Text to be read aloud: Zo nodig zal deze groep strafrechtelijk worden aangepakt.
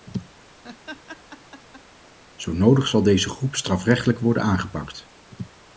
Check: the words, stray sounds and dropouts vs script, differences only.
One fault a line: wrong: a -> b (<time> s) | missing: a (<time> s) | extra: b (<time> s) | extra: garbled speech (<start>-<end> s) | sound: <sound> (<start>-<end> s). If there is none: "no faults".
sound: laugh (0.6-1.8 s)